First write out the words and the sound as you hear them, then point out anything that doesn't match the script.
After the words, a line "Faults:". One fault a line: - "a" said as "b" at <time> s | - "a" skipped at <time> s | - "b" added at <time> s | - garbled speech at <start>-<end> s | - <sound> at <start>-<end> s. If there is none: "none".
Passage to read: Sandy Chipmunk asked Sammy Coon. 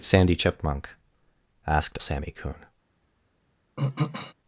Sandy Chipmunk asked Sammy Coon.
Faults:
- throat clearing at 3.8-4.3 s